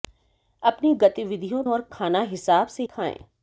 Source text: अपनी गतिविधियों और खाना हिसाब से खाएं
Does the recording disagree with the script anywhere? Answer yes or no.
no